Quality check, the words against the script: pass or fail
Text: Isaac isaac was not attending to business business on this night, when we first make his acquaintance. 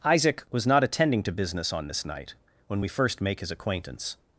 fail